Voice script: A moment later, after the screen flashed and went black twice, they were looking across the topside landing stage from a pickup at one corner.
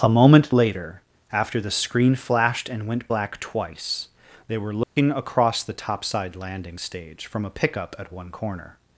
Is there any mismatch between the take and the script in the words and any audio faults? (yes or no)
yes